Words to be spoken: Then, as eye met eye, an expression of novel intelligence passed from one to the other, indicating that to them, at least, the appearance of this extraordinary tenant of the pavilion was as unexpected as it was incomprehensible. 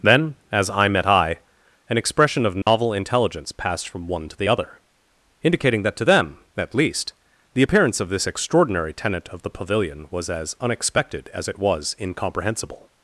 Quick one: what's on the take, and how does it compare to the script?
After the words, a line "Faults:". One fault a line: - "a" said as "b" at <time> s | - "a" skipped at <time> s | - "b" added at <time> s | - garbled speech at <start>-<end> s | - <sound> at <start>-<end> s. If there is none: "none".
Then, as eye met eye, an expression of novel intelligence passed from one to the other, indicating that to them, at least, the appearance of this extraordinary tenant of the pavilion was as unexpected as it was incomprehensible.
Faults:
- dropout at 2.6-2.7 s